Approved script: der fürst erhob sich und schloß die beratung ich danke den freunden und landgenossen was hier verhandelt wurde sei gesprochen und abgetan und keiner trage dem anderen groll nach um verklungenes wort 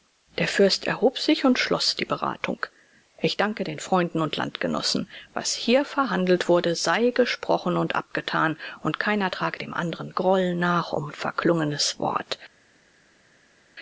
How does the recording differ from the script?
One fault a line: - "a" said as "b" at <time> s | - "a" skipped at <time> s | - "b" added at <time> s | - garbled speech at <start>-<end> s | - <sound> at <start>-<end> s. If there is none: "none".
none